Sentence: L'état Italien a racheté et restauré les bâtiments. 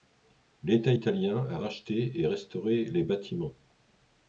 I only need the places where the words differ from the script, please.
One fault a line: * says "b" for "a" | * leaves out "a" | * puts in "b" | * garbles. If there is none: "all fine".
all fine